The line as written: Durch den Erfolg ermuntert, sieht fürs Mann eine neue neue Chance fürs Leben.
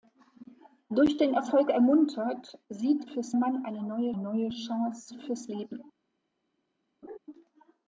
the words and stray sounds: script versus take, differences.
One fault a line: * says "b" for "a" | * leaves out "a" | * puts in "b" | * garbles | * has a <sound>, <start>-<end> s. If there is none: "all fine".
* has a laugh, 7.0-7.2 s